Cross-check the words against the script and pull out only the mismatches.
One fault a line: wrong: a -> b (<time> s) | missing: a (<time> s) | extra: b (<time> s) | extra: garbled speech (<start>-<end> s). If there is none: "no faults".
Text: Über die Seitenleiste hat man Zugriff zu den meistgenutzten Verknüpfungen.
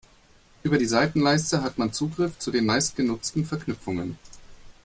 no faults